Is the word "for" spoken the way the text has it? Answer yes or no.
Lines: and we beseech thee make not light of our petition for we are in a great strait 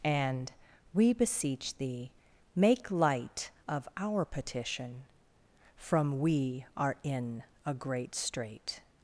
no